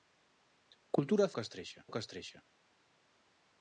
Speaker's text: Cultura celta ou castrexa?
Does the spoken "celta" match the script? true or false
false